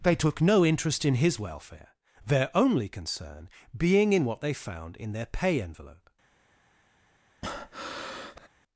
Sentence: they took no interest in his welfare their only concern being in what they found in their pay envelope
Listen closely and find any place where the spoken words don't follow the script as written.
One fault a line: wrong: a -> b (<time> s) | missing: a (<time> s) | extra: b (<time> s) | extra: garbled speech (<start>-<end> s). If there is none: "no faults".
no faults